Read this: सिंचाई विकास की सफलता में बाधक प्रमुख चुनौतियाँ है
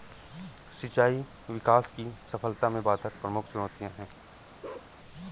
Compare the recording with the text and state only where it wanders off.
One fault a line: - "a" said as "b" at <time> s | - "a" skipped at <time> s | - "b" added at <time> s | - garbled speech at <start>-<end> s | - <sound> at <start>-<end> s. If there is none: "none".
- bark at 4.6-4.9 s